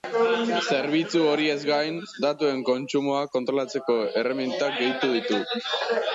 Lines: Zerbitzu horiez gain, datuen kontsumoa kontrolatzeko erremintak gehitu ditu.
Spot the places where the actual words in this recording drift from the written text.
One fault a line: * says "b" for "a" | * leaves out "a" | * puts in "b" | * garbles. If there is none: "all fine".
all fine